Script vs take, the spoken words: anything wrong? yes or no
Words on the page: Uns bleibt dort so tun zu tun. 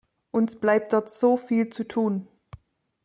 yes